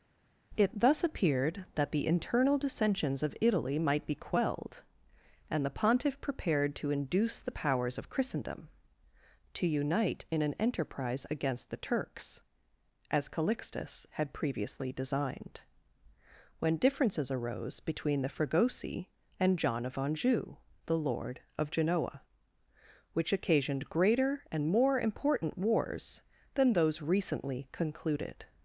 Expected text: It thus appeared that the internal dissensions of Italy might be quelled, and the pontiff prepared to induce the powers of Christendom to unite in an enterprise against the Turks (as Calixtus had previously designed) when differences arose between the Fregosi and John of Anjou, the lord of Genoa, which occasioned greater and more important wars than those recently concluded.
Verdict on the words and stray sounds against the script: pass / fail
pass